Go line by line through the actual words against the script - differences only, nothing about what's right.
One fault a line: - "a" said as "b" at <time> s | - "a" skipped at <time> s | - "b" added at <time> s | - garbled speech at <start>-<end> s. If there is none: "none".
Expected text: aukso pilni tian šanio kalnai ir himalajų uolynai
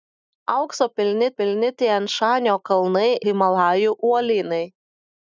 - "pilni" added at 1.4 s
- "ir" skipped at 3.1 s